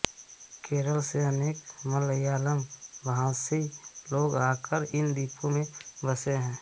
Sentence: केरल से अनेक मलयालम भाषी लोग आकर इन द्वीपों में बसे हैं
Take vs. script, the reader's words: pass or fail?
pass